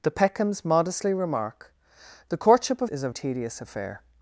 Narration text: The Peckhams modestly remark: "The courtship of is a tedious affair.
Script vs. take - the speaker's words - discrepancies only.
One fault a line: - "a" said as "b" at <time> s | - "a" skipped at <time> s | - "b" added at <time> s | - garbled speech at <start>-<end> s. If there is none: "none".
none